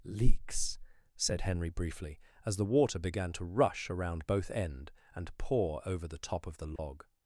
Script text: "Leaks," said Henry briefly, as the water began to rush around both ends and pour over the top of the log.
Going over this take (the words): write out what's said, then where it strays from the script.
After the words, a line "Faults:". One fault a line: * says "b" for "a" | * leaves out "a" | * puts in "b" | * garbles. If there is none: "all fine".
"Leaks," said Henry briefly, as the water began to rush around both end and pour over the top of the log.
Faults:
* says "end" for "ends"